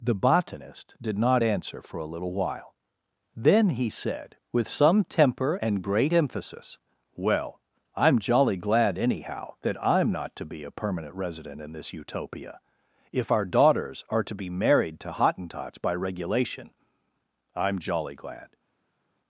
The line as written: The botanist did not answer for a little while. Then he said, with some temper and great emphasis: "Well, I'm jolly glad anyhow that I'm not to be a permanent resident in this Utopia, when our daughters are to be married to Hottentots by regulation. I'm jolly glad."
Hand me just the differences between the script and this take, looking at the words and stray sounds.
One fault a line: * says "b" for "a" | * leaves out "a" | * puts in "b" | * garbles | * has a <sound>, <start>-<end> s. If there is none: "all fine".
* says "if" for "when"